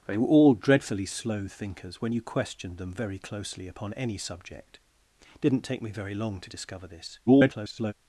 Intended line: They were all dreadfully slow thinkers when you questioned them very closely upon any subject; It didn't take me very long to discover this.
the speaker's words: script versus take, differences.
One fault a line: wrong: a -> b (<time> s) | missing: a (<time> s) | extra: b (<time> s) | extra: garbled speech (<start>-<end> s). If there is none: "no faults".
extra: garbled speech (7.3-7.9 s)